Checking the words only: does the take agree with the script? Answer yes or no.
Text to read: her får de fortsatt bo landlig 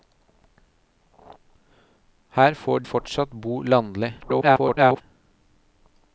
no